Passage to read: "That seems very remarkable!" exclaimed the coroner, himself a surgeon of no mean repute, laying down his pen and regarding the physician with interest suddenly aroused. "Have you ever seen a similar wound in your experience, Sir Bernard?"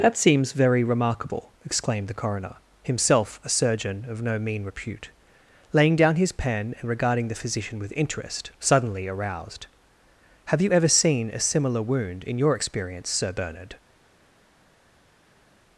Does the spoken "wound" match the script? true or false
true